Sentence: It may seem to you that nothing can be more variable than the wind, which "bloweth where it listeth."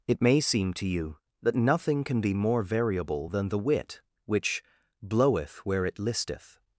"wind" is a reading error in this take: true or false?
true